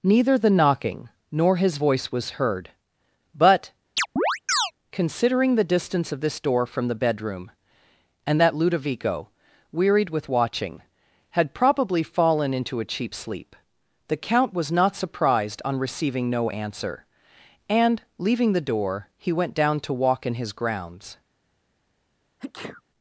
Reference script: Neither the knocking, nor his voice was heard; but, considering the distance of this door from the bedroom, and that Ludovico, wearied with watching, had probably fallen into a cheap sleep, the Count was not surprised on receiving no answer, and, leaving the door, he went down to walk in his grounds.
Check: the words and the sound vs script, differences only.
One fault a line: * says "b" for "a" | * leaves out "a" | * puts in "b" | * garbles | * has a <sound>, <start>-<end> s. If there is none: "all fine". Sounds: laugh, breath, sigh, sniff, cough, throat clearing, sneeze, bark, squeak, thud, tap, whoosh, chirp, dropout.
* has a chirp, 4.0-4.7 s
* has a sneeze, 22.4-22.8 s